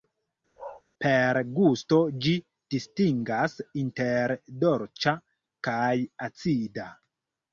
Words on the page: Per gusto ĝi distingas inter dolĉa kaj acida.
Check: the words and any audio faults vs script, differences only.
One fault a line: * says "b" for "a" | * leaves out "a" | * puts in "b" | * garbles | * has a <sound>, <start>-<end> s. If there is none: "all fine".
* has a bark, 0.6-0.8 s